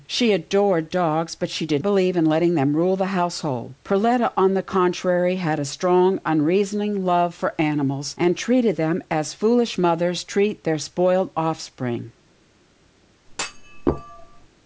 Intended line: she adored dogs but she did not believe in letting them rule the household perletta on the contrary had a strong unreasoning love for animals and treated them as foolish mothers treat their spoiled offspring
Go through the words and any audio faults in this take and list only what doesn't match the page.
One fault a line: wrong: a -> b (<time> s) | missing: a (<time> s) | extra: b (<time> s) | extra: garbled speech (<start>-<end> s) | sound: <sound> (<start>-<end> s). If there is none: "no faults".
missing: not (1.8 s)
sound: thud (13.3-14.5 s)